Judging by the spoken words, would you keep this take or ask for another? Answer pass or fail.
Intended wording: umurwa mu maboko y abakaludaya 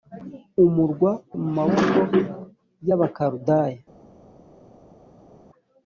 pass